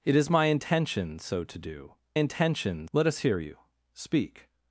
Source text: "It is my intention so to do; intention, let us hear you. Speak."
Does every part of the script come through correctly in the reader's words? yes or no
yes